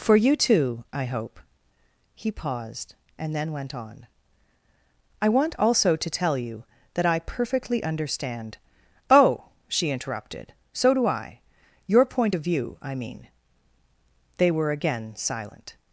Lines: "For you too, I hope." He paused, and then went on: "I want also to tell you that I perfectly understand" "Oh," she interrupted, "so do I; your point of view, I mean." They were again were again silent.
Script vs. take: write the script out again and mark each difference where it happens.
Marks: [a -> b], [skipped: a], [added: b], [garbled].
"For you too, I hope." He paused, and then went on: "I want also to tell you that I perfectly understand" "Oh," she interrupted, "so do I; your point of view, I mean." They were again [skipped: were again] silent.